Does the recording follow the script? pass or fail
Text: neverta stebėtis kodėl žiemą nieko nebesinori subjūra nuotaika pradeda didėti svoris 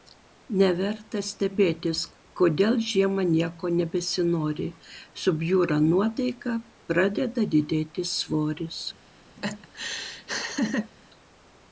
pass